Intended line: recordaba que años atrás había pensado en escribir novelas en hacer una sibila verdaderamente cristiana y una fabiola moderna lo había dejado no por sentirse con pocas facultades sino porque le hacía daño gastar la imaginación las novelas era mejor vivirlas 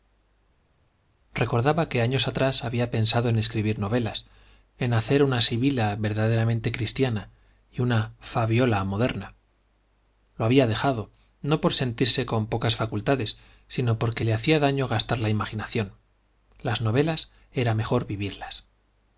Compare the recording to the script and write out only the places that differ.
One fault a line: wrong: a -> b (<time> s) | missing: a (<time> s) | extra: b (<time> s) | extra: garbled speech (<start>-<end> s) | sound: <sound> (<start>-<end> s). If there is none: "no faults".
no faults